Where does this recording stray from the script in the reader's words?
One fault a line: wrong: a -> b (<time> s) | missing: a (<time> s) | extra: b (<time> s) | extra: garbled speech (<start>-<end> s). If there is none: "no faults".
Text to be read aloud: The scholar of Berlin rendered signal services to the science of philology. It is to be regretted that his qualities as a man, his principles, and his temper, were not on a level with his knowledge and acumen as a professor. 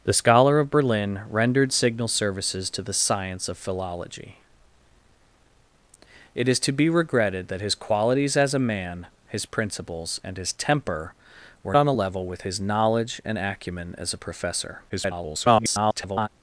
missing: not (11.8 s)
extra: garbled speech (14.9-16.3 s)